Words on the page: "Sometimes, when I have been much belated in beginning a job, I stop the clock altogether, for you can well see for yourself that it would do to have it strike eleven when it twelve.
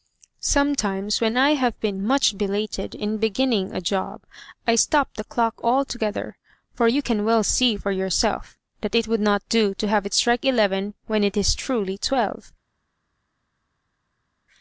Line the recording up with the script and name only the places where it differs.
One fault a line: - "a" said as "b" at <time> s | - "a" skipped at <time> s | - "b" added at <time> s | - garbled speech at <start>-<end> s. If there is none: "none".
- "not" added at 9.2 s
- "is truly" added at 11.4 s